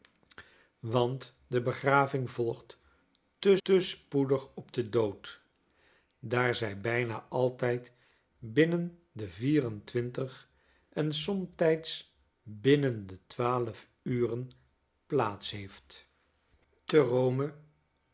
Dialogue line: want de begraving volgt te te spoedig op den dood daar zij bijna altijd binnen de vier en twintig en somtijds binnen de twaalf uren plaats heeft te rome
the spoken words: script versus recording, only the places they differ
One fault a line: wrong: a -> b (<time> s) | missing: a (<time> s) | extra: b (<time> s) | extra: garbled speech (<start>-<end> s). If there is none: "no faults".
no faults